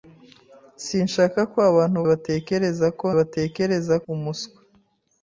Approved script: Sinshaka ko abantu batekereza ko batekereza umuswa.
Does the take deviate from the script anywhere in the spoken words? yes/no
no